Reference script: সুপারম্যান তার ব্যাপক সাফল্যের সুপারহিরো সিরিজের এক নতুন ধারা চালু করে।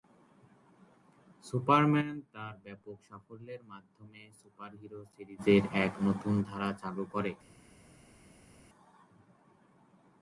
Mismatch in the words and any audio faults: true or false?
true